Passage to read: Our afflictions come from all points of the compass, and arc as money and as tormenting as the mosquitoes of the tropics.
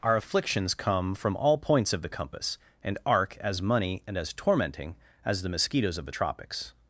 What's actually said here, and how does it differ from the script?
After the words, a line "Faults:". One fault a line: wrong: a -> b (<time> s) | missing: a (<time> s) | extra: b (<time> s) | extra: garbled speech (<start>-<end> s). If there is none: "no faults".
Our afflictions come from all points of the compass, and arc as money and as tormenting as the mosquitoes of the tropics.
Faults:
no faults